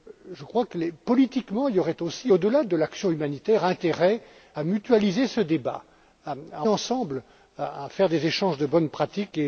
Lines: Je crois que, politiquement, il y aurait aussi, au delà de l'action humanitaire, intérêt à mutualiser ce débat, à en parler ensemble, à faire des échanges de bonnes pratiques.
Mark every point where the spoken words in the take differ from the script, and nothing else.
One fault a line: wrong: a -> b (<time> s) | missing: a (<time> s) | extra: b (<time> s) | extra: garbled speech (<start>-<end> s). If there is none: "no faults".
missing: à (4.2 s)
missing: en parler (6.6 s)